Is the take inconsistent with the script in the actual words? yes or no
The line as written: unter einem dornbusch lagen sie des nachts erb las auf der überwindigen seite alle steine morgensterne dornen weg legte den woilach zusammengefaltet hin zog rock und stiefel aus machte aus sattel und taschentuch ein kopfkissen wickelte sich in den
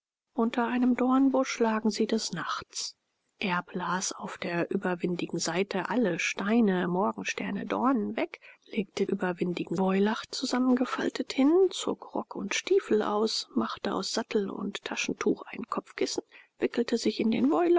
yes